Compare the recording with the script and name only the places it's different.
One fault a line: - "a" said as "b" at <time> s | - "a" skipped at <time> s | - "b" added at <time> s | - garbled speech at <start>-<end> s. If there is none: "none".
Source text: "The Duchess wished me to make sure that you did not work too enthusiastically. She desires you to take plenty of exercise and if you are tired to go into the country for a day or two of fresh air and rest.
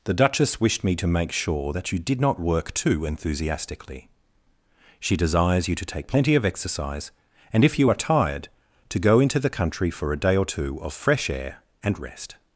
none